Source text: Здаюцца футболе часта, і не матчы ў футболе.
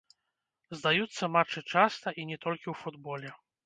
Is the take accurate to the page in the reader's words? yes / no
no